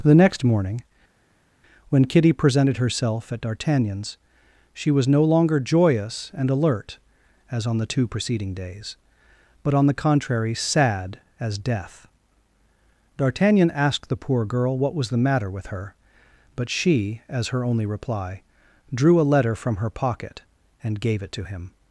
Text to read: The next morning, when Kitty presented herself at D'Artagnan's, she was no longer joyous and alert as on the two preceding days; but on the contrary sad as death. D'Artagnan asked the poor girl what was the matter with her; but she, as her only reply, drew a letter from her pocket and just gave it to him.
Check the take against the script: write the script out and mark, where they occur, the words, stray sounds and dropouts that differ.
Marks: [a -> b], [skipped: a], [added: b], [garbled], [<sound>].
The next morning, when Kitty presented herself at D'Artagnan's, she was no longer joyous and alert as on the two preceding days; but on the contrary sad as death. D'Artagnan asked the poor girl what was the matter with her; but she, as her only reply, drew a letter from her pocket and [skipped: just] gave it to him.